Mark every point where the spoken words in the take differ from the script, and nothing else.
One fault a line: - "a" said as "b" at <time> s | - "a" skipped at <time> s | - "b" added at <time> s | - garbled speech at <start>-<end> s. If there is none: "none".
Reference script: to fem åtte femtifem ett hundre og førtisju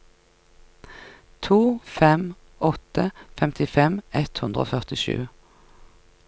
none